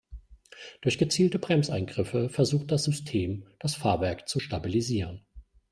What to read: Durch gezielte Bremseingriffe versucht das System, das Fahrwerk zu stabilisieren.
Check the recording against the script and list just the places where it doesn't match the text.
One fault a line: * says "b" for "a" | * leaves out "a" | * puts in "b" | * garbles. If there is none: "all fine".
all fine